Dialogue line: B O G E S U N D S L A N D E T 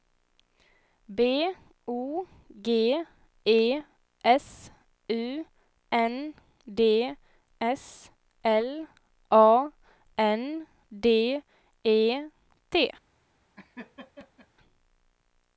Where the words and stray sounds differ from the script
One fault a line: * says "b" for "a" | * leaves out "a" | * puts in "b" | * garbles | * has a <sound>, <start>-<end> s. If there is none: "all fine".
* has a laugh, 13.6-14.5 s